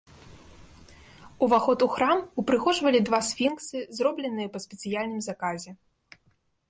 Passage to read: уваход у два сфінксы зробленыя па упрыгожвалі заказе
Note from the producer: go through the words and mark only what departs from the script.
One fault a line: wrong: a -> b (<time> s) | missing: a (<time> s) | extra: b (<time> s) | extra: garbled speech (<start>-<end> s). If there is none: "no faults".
extra: храм упрыгожвалі (2.0 s)
wrong: упрыгожвалі -> спецыяльным (4.7 s)